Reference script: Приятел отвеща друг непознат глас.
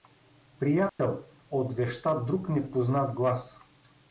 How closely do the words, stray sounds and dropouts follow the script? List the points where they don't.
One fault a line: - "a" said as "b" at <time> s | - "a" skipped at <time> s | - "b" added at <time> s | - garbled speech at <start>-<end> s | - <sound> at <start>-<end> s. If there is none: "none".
- dropout at 0.9-1.0 s